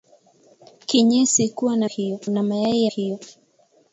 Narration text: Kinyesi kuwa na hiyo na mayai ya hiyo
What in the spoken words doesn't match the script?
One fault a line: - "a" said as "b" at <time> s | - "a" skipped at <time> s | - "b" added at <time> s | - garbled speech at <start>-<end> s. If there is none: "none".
none